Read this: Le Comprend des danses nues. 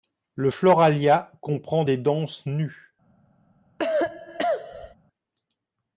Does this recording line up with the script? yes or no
no